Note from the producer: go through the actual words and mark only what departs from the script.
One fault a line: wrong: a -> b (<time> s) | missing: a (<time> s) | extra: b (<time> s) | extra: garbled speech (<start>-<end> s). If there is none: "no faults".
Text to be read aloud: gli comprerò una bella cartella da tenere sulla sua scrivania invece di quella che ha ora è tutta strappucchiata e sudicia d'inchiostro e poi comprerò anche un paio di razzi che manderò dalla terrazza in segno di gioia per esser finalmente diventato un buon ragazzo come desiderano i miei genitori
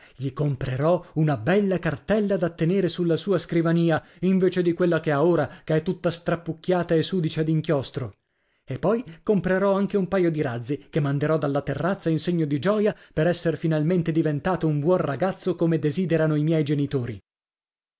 extra: che (5.6 s)